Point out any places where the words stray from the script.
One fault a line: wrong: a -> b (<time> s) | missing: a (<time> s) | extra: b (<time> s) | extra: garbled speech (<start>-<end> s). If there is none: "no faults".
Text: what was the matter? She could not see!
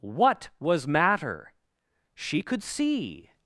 missing: the (0.9 s)
missing: not (2.6 s)